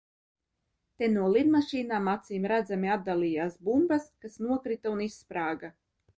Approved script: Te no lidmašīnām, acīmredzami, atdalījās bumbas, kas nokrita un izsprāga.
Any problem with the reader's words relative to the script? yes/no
no